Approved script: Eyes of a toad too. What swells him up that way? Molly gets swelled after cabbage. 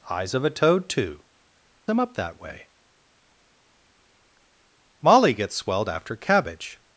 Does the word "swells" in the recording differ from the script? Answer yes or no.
yes